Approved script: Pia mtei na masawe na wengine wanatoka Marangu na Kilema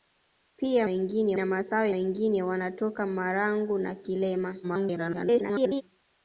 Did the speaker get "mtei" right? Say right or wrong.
wrong